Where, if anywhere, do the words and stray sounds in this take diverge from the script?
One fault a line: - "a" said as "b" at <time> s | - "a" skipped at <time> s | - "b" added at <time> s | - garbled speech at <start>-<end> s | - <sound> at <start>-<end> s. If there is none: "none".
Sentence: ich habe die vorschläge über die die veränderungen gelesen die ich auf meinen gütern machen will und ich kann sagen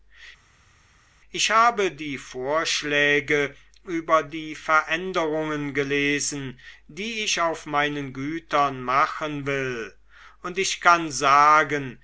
- "die" skipped at 4.5 s